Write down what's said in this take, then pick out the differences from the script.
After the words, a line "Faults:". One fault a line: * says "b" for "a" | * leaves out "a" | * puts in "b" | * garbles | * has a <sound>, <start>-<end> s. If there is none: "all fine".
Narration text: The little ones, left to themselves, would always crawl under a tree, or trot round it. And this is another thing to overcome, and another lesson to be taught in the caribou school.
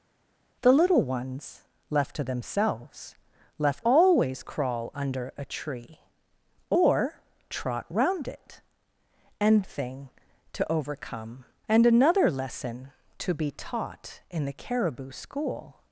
The little ones, left to themselves, left always crawl under a tree, or trot round it. And thing to overcome, and another lesson to be taught in the caribou school.
Faults:
* says "left" for "would"
* leaves out "this is another"